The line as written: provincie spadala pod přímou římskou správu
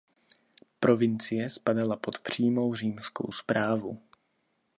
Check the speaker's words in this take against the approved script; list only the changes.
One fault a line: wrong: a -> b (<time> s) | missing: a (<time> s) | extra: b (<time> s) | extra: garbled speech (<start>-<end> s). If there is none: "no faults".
no faults